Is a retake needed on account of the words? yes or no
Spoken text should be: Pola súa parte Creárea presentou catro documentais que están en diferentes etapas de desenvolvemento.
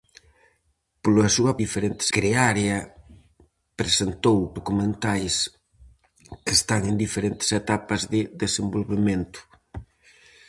yes